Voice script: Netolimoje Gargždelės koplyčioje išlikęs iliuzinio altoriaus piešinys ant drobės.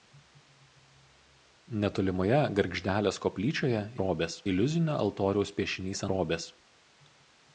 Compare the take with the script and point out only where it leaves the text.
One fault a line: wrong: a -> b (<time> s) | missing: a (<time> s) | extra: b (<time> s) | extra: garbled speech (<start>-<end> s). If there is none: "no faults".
wrong: išlikęs -> drobės (4.0 s)
missing: ant (6.1 s)